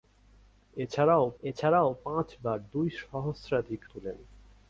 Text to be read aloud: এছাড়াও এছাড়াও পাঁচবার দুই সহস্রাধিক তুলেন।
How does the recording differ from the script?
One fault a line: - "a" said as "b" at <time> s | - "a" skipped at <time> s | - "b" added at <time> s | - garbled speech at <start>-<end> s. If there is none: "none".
none